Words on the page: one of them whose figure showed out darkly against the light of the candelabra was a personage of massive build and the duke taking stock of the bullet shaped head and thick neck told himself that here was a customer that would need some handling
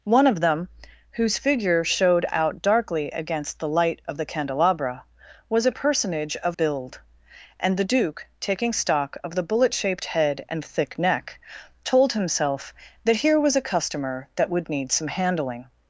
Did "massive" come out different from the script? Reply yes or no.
yes